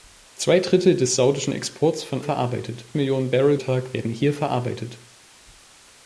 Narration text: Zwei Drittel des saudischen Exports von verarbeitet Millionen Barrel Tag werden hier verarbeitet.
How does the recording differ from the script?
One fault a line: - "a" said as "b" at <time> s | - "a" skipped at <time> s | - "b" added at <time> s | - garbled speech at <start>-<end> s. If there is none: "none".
none